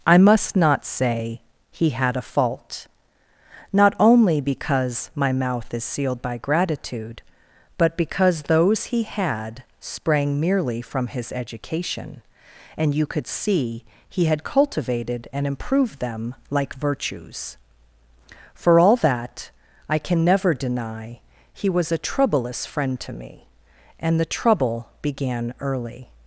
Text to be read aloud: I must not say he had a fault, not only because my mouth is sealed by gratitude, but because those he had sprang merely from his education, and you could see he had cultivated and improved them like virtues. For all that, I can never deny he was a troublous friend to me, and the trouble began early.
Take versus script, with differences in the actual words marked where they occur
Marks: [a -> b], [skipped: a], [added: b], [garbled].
I must not say he had a fault, not only because my mouth is sealed by gratitude, but because those he had sprang merely from his education, and you could see he had cultivated and improved them like virtues. For all that, I can never deny he was a troublous friend to me, and the trouble began early.